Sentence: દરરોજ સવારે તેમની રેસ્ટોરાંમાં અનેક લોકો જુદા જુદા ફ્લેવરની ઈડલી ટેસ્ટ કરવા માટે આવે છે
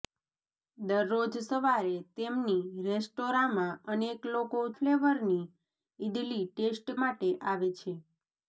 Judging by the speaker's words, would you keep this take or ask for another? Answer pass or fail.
fail